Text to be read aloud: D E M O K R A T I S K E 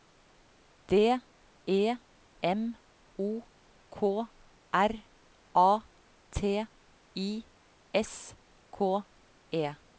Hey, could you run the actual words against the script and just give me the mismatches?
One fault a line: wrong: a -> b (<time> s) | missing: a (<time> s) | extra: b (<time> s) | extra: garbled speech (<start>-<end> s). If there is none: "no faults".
no faults